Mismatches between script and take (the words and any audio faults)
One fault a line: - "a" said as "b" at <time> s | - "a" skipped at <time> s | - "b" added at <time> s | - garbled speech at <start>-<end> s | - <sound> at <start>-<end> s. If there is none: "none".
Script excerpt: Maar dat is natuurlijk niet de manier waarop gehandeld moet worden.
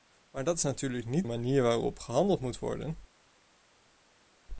- "de" skipped at 1.3 s